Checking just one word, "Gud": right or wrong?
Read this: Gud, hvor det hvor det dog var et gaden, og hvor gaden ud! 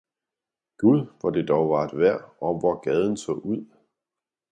right